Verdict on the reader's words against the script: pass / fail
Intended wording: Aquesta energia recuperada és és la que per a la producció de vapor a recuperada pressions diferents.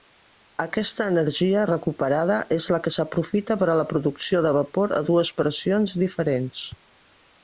fail